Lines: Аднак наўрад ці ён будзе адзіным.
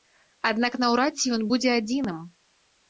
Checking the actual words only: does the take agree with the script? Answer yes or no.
yes